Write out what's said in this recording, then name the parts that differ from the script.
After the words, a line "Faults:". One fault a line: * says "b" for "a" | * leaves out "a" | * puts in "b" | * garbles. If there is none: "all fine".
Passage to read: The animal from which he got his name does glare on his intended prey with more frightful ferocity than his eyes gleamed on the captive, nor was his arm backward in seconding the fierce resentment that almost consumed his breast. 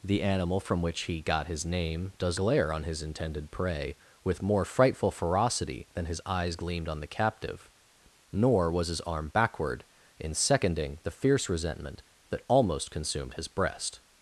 The animal from which he got his name does glare on his intended prey with more frightful ferocity than his eyes gleamed on the captive, nor was his arm backward in seconding the fierce resentment that almost consumed his breast.
Faults:
all fine